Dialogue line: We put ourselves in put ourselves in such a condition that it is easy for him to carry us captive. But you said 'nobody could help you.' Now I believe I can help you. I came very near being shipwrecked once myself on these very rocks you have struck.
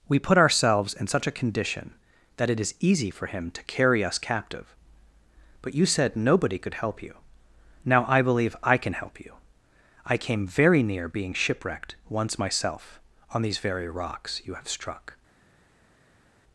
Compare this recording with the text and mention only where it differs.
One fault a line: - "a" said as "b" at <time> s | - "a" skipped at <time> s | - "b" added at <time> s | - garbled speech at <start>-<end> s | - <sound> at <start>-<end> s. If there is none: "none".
- "put ourselves in" skipped at 1.1 s